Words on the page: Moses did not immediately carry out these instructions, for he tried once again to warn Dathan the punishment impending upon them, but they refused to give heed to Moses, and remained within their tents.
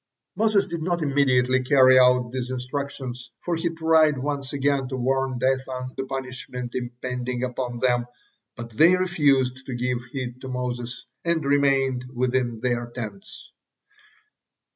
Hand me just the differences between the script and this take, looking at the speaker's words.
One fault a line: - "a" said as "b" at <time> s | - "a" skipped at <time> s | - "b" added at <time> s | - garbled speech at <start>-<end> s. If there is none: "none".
none